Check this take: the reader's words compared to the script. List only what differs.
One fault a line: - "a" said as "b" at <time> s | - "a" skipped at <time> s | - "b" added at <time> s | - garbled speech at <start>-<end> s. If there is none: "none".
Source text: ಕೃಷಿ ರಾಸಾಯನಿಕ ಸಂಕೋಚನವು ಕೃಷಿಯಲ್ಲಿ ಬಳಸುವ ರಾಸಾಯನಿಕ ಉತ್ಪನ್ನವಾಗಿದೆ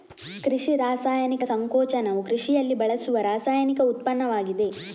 none